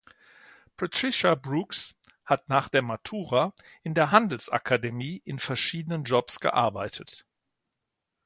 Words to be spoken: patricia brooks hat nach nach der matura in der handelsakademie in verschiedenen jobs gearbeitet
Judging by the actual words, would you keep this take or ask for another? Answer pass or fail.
fail